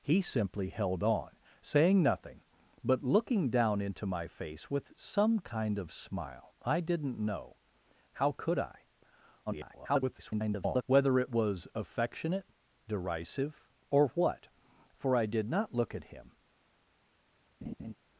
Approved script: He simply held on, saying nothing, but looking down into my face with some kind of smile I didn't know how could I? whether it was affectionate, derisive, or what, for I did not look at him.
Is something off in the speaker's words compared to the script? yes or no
yes